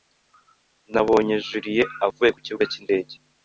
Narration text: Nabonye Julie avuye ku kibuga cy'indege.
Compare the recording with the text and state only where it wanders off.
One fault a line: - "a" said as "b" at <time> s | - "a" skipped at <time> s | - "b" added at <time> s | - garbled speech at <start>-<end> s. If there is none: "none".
none